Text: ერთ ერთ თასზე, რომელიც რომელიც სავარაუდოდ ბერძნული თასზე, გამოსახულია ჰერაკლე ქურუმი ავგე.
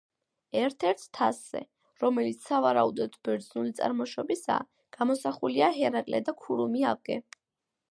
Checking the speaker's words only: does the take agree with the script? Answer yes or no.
no